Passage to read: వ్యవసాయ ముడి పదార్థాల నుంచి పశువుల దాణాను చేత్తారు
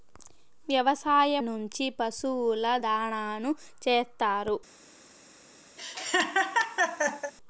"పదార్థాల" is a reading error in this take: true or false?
true